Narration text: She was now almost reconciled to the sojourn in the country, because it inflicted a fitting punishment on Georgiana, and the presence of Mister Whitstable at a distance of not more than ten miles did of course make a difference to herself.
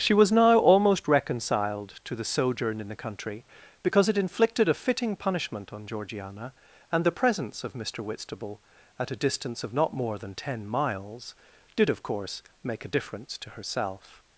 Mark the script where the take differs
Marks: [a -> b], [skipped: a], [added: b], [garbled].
She was now almost reconciled to the sojourn in the country, because it inflicted a fitting punishment on Georgiana, and the presence of Mister Whitstable at a distance of not more than ten miles did of course make a difference to herself.